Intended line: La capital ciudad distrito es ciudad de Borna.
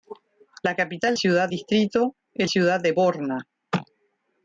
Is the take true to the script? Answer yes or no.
yes